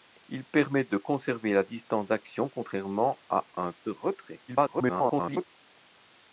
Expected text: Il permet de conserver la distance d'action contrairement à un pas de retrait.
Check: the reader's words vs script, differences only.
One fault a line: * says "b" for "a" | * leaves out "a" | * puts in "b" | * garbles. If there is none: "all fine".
* leaves out "pas"
* garbles